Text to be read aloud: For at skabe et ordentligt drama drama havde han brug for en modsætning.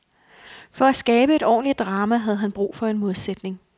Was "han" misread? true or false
false